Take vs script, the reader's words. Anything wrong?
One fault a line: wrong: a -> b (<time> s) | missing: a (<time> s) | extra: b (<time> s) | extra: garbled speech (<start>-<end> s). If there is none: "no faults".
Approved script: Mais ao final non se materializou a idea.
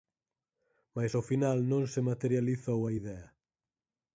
no faults